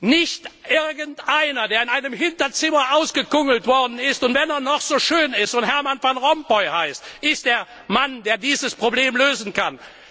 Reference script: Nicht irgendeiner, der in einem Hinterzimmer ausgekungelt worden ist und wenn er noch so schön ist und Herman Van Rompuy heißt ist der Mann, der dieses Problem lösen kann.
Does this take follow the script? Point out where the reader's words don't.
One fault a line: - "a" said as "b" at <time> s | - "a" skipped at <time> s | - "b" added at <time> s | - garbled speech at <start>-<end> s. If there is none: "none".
none